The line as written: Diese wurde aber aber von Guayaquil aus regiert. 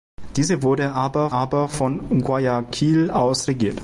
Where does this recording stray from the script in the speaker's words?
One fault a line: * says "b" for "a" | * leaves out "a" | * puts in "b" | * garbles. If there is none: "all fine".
all fine